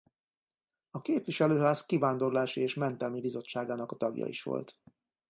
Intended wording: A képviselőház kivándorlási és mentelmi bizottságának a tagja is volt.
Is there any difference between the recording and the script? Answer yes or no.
no